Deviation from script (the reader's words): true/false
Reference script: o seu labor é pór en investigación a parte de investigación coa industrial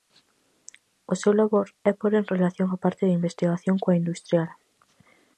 true